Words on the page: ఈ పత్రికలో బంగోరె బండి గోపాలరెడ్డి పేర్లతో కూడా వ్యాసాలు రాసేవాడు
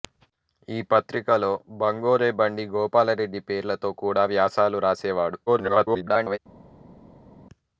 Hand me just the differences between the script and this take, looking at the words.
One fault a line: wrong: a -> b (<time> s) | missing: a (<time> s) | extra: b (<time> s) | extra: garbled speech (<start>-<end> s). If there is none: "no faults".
extra: garbled speech (5.5-6.4 s)